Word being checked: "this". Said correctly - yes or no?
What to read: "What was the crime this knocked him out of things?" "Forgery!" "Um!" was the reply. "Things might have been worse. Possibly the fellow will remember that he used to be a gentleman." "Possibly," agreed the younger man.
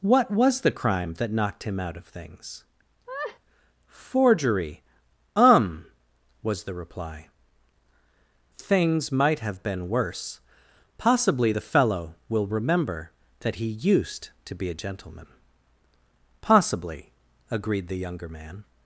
no